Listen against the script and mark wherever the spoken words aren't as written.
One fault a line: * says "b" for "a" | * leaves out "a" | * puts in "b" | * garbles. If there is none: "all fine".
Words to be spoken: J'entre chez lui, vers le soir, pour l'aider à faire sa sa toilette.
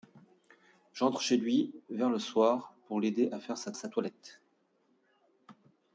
all fine